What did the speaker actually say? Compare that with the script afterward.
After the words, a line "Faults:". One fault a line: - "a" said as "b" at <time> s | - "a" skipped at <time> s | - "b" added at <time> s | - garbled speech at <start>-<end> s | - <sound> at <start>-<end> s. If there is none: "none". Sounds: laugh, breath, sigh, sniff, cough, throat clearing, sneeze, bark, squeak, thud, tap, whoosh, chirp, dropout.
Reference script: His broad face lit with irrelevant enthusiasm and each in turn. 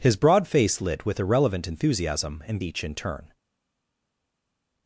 His broad face lit with irrelevant enthusiasm and each in turn.
Faults:
none